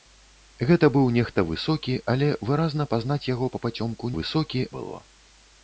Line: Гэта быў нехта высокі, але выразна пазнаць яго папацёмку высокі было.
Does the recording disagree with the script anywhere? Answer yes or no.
no